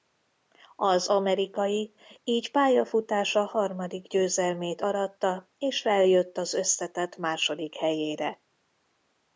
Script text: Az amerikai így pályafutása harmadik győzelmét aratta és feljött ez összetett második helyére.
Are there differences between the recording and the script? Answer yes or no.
yes